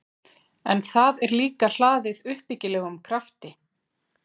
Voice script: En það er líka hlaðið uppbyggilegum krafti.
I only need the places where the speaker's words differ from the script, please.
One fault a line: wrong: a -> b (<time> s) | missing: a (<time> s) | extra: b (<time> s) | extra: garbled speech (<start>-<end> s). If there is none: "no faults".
no faults